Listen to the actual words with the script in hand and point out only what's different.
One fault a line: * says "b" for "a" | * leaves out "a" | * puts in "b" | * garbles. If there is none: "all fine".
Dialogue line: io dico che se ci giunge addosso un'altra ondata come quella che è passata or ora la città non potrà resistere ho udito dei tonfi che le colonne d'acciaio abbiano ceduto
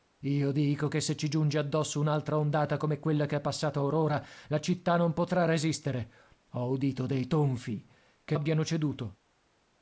* leaves out "le colonne d'acciaio"